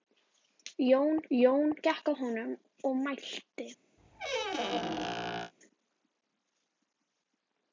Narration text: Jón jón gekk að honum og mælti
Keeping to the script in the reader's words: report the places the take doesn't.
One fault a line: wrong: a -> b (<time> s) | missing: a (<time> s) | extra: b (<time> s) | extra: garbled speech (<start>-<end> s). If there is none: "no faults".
no faults